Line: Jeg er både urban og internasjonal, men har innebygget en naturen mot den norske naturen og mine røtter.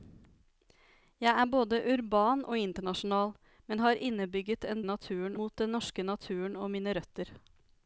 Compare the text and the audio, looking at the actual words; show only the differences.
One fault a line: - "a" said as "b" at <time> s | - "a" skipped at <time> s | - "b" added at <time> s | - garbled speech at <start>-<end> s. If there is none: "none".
none